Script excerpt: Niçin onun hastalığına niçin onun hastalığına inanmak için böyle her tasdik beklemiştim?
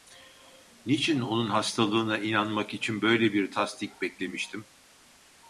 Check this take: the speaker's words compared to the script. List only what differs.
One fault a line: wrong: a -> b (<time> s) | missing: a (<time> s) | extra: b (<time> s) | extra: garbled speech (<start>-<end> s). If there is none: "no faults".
missing: niçin onun hastalığına (2.2 s)
wrong: her -> bir (3.3 s)